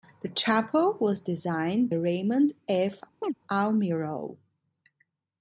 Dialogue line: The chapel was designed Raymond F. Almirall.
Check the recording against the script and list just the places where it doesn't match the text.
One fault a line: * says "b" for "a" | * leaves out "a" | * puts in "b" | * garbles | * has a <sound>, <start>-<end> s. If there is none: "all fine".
* has a chirp, 3.2-3.3 s